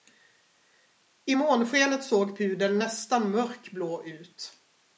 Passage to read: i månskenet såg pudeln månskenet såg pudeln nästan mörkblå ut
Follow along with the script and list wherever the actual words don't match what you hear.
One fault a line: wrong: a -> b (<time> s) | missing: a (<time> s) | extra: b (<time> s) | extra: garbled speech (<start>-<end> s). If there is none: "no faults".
missing: månskenet såg pudeln (2.8 s)